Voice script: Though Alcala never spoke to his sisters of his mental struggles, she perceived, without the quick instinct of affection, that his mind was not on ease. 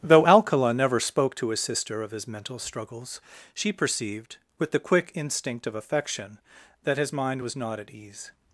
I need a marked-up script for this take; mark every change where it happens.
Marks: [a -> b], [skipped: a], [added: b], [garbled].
Though Alcala never spoke to his [sisters -> sister] of his mental struggles, she perceived, [without -> with] the quick instinct of affection, that his mind was not [on -> at] ease.